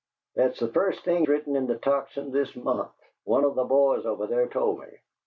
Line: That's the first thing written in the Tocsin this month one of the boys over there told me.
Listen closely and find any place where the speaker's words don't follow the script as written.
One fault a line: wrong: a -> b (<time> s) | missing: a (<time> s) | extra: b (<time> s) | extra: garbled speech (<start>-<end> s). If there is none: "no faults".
no faults